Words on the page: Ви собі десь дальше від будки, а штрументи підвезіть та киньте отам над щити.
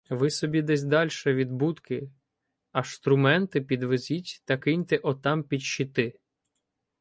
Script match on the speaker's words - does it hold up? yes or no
no